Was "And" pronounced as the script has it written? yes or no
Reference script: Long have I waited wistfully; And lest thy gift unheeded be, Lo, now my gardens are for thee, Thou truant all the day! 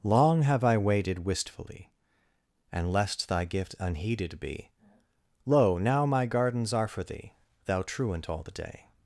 yes